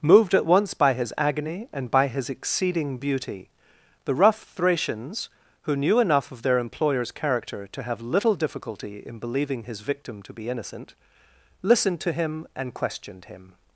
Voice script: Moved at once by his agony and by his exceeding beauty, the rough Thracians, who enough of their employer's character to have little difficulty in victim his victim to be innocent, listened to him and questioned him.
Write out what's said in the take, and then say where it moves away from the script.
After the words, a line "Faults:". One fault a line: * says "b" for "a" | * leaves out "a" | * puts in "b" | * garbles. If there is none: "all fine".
Moved at once by his agony and by his exceeding beauty, the rough Thracians, who knew enough of their employer's character to have little difficulty in believing his victim to be innocent, listened to him and questioned him.
Faults:
* puts in "knew"
* says "believing" for "victim"